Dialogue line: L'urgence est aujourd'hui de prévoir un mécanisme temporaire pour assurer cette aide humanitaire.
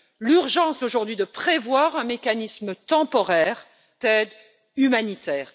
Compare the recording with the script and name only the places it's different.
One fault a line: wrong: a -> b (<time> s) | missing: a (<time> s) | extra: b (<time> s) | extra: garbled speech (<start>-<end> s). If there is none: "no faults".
missing: est (0.8 s)
missing: pour assurer cette (3.7 s)